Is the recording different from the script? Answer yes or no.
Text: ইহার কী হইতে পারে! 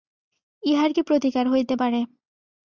yes